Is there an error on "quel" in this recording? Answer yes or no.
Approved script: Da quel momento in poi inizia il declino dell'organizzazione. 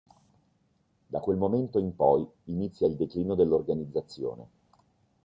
no